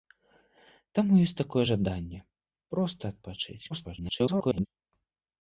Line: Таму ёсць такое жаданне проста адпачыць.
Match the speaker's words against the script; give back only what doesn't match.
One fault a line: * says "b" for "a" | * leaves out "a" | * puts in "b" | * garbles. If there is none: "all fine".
* garbles